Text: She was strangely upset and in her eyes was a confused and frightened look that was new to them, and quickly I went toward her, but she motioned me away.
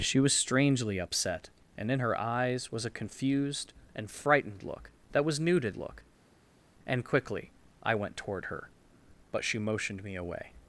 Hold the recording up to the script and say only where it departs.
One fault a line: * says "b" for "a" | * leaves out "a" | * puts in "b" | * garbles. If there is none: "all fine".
* says "look" for "them"